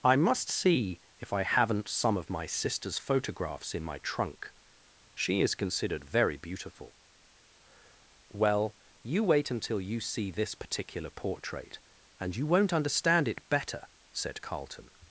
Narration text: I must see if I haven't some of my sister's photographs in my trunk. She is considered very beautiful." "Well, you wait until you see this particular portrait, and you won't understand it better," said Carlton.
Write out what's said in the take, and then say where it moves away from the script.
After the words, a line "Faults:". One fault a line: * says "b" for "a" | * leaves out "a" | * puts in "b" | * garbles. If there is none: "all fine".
I must see if I haven't some of my sister's photographs in my trunk. She is considered very beautiful." "Well, you wait until you see this particular portrait, and you won't understand it better," said Carlton.
Faults:
all fine